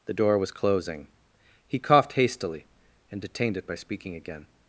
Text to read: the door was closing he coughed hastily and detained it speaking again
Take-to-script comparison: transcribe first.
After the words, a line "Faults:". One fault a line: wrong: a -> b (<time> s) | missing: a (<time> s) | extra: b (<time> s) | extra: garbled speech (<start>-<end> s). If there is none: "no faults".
the door was closing he coughed hastily and detained it by speaking again
Faults:
extra: by (3.7 s)